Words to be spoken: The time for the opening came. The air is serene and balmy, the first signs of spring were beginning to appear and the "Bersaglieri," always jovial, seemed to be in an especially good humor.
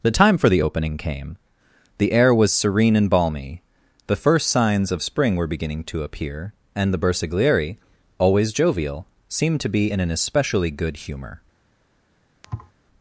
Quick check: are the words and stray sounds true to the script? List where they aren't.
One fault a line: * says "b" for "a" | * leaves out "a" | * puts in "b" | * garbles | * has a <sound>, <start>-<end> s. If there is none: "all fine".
* says "was" for "is"
* has a thud, 12.4-12.7 s